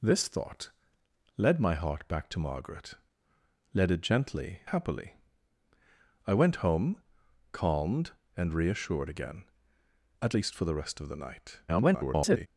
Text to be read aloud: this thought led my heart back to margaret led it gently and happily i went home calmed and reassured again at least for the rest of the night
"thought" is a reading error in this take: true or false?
false